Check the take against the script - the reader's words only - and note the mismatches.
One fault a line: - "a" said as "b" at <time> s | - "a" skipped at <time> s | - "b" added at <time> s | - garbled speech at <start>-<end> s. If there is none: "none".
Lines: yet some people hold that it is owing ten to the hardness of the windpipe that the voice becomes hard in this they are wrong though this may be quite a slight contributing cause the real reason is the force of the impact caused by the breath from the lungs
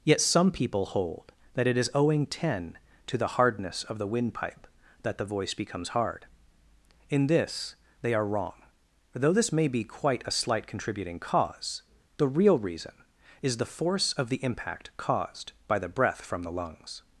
none